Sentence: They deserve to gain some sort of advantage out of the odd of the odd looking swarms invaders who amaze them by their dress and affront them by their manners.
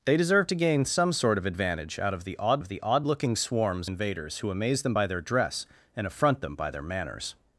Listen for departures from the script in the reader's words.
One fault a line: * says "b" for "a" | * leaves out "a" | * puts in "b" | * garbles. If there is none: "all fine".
all fine